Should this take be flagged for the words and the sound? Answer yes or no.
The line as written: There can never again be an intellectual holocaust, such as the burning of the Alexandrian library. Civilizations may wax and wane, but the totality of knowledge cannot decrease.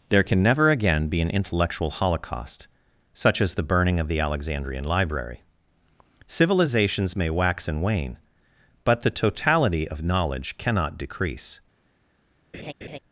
yes